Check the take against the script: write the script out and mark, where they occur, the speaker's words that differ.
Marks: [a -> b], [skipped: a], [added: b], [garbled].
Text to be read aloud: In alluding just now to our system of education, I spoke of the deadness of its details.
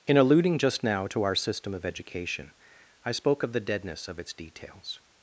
In alluding just now to our system of education, I spoke of the deadness of its details.